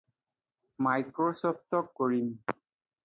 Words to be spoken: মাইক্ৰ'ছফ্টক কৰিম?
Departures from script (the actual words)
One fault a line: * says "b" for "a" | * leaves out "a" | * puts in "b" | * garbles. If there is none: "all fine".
all fine